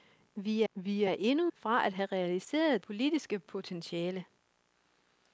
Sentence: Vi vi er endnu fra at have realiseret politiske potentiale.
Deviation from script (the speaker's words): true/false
false